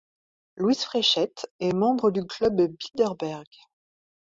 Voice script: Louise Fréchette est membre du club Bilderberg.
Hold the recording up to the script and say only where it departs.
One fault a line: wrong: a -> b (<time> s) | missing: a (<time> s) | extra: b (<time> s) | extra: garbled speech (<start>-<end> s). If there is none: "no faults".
no faults